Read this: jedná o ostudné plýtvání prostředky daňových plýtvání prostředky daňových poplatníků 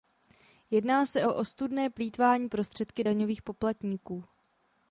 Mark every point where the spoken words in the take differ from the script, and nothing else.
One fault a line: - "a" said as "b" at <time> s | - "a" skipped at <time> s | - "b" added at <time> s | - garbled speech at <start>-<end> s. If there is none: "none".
- "se" added at 1.1 s
- "plýtvání prostředky daňových" skipped at 3.4 s